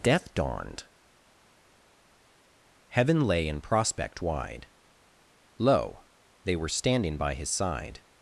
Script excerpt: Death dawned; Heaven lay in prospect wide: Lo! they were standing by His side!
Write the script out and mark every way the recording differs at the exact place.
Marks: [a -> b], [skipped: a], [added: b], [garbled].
Death dawned; Heaven lay in prospect wide: Lo! they were standing by His side!